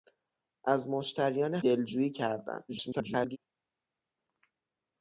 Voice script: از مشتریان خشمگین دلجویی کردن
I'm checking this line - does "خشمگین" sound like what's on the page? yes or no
no